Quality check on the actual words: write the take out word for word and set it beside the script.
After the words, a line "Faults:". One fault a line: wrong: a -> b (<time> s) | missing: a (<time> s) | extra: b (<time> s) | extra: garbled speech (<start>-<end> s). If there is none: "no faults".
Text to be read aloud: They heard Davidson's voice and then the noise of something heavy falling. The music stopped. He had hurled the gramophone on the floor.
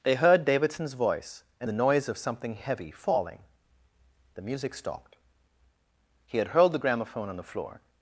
They heard Davidson's voice and the noise of something heavy falling. The music stopped. He had hurled the gramophone on the floor.
Faults:
missing: then (1.7 s)